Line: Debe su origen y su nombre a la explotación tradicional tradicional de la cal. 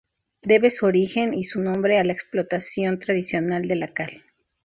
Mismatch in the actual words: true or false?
true